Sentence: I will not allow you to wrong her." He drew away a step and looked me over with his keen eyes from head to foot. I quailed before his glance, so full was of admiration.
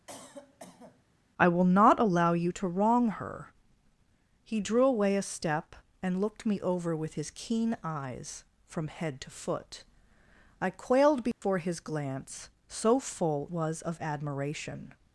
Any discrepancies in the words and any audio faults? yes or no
yes